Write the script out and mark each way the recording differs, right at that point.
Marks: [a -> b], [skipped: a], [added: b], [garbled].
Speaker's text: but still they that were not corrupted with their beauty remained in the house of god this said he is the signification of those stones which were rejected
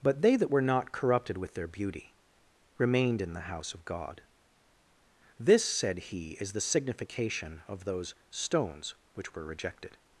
but [skipped: still] they that were not corrupted with their beauty remained in the house of god this said he is the signification of those stones which were rejected